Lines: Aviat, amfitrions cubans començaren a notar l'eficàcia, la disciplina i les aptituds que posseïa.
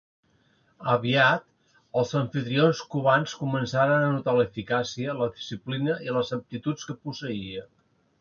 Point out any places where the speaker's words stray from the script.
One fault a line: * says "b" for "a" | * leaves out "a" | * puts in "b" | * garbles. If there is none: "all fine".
* puts in "els"